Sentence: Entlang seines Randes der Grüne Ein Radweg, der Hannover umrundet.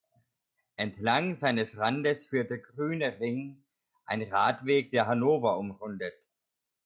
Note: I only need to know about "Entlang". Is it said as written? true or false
true